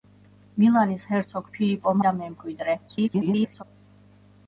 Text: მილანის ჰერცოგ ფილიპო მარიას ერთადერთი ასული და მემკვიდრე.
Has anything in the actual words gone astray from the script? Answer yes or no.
yes